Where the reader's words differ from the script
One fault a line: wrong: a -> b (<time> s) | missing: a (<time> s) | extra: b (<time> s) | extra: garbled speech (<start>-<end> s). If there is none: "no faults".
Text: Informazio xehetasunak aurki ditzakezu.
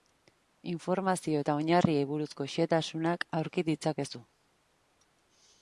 extra: eta oinarriei buruzko (1.4 s)